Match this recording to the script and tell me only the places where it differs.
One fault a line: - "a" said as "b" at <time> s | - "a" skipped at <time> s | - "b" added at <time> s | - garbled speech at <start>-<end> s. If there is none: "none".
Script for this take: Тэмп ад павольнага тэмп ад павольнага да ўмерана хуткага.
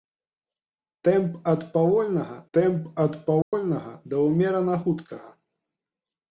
none